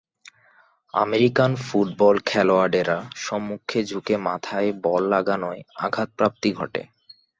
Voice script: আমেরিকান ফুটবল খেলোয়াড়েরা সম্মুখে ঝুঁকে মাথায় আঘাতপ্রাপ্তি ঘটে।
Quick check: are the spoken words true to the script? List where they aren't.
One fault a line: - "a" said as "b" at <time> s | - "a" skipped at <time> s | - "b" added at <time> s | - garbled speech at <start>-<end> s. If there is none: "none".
- "বল লাগানোয়" added at 4.8 s